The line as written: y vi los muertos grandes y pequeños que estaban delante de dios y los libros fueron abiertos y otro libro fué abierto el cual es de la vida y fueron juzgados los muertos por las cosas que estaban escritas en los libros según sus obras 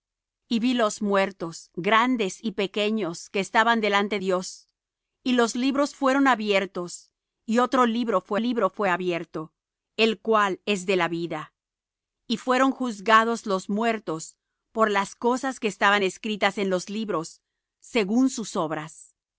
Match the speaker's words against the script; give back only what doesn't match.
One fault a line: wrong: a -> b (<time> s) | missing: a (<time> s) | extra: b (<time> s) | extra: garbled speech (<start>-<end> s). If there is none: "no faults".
missing: de (4.2 s)
extra: libro fué (8.3 s)